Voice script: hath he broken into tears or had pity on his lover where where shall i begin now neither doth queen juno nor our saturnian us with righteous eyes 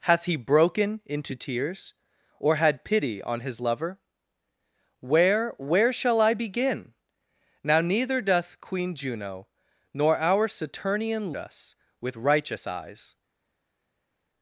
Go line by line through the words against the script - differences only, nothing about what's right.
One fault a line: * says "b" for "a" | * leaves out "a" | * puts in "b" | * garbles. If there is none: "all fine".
all fine